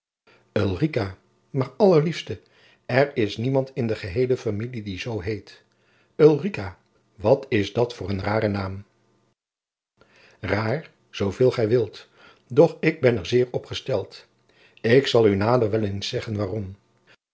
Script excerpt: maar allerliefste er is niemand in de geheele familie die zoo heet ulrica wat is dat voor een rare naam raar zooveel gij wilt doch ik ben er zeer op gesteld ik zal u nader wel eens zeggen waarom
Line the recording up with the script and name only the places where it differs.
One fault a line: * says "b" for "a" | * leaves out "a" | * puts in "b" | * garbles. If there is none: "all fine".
all fine